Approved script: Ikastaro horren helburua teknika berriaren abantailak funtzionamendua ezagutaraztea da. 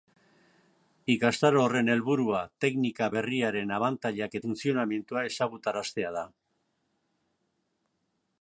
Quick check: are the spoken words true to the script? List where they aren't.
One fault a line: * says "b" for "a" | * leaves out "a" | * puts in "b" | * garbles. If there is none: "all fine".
all fine